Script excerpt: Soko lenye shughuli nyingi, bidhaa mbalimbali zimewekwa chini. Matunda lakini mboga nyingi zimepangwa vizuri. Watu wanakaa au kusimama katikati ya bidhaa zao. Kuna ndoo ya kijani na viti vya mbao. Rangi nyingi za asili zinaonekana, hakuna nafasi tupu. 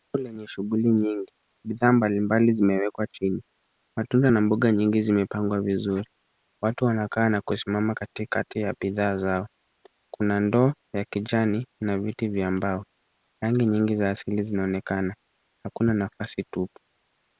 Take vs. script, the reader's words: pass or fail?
fail